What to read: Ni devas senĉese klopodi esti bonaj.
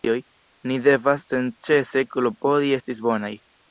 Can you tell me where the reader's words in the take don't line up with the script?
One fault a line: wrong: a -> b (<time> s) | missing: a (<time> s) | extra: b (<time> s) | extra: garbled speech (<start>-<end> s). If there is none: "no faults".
no faults